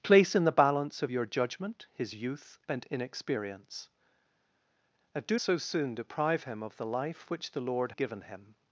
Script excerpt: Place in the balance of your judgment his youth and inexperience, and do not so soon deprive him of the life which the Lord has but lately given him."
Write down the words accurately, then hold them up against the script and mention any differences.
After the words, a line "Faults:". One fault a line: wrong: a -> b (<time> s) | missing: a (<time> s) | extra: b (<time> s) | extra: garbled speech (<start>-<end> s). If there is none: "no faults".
Place in the balance of your judgment his youth and inexperience, and do so soon deprive him of the life which the Lord given him."
Faults:
missing: not (5.4 s)
missing: has but lately (7.9 s)